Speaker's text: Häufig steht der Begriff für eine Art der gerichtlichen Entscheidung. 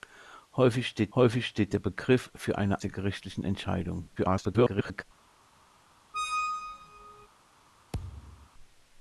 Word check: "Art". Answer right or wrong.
wrong